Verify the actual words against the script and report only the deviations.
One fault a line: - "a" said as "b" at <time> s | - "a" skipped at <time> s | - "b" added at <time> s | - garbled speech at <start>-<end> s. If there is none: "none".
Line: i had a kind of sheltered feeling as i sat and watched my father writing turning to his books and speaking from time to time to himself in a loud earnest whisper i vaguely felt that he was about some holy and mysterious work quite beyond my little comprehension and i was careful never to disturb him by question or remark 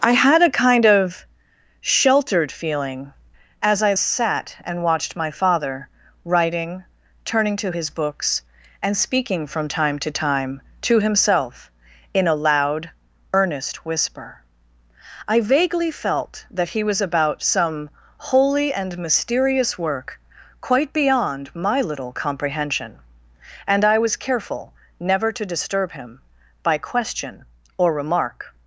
none